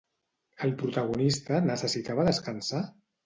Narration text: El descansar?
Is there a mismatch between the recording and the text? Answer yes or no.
yes